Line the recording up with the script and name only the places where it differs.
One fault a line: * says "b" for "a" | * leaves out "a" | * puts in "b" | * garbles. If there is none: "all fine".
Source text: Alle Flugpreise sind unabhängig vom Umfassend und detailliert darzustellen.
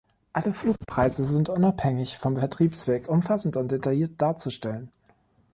* puts in "Vertriebsweg"